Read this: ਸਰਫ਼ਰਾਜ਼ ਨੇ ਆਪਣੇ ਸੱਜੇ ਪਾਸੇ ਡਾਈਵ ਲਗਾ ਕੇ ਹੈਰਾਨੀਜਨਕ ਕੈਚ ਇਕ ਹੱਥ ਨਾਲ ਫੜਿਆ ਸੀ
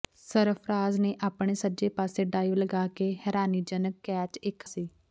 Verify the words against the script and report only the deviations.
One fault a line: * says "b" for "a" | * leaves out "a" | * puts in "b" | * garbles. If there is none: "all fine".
* leaves out "ਹੱਥ ਨਾਲ ਫੜਿਆ"